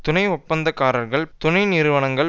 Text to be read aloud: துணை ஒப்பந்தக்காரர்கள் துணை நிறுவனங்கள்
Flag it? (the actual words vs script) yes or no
no